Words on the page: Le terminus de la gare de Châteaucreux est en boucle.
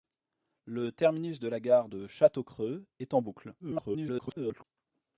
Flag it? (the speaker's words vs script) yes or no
yes